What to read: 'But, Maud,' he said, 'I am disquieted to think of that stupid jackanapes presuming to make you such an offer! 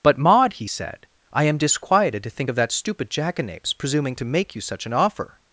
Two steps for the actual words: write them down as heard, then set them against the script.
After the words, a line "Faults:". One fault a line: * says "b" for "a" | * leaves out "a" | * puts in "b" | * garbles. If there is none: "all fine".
'But, Maud,' he said, 'I am disquieted to think of that stupid jackanapes presuming to make you such an offer!
Faults:
all fine